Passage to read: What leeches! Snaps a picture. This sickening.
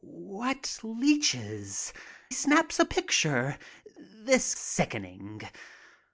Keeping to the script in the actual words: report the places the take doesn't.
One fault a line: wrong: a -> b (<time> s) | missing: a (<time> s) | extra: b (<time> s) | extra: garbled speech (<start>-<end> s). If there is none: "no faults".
no faults